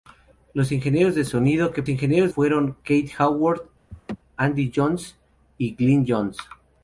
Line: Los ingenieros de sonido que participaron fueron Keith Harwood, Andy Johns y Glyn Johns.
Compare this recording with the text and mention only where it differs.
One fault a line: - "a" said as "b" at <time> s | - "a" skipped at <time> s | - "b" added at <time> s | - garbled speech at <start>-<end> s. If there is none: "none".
- "participaron" said as "ingenieros" at 1.9 s